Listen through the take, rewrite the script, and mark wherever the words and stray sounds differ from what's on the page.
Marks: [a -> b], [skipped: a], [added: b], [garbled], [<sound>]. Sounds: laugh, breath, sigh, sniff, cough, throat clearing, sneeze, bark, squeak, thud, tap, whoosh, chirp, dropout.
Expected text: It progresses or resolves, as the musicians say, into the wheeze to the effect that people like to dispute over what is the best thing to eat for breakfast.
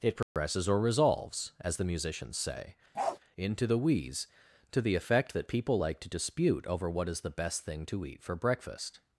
It progresses [dropout] or resolves, as the musicians say, [bark] into the wheeze to the effect that people like to dispute over what is the best thing to eat for breakfast.